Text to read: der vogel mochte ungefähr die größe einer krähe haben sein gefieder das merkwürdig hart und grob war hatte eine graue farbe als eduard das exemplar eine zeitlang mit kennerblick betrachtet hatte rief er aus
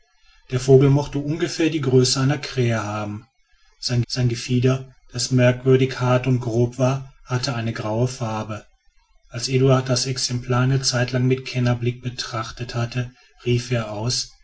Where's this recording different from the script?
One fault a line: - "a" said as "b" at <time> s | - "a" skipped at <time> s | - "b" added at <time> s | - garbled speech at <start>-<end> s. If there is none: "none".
- "sein" added at 4.1 s